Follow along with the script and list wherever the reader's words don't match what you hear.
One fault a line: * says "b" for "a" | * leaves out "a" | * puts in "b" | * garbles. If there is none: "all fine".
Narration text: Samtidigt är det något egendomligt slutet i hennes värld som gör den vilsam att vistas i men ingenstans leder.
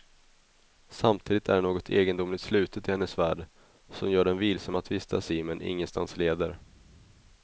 all fine